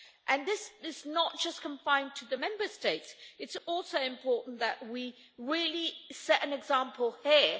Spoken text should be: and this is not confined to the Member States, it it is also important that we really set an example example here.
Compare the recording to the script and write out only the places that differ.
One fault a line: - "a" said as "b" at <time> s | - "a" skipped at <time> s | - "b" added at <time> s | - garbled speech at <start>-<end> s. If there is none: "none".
- "just" added at 1.4 s
- "it" skipped at 3.5 s
- "example" skipped at 7.1 s